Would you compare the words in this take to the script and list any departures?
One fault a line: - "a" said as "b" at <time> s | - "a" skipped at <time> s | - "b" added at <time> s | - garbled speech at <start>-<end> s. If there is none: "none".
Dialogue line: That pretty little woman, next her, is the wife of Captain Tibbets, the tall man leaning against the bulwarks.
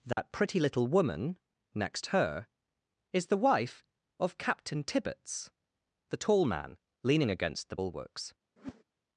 none